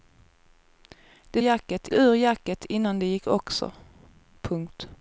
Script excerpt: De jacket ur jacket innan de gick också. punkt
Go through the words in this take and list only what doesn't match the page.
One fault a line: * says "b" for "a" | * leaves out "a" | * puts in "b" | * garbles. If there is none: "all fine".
all fine